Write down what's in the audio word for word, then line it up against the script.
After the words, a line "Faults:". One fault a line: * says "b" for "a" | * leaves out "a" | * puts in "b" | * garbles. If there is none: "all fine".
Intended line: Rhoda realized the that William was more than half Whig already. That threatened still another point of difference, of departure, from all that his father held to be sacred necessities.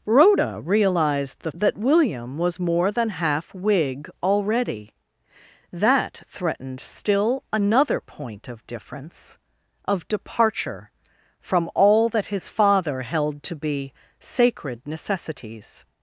Rhoda realized the that William was more than half Whig already. That threatened still another point of difference, of departure, from all that his father held to be sacred necessities.
Faults:
all fine